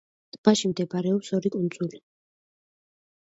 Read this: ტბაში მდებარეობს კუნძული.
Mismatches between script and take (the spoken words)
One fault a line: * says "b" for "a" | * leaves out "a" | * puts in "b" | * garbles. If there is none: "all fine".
* puts in "ორი"